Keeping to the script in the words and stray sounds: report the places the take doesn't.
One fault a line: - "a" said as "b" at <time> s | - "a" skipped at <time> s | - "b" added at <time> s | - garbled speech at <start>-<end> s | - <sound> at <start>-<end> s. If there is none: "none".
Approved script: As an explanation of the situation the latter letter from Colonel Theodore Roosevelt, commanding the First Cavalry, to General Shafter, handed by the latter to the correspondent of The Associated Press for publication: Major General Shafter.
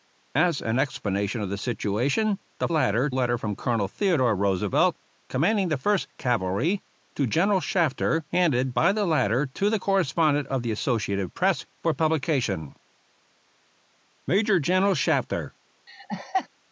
- laugh at 15.9-16.5 s